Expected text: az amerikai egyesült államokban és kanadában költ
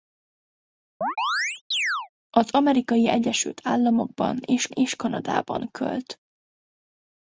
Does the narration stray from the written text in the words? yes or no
yes